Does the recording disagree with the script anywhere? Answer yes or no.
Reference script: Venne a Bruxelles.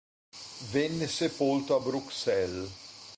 yes